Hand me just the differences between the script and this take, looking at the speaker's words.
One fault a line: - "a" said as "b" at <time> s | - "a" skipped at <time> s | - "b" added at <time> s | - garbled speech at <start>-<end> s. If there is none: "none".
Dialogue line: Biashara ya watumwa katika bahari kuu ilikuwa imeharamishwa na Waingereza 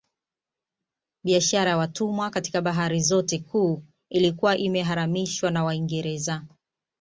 - "zote" added at 3.0 s